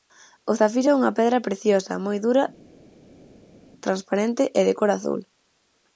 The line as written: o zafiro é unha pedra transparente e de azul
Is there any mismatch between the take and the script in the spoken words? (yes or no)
yes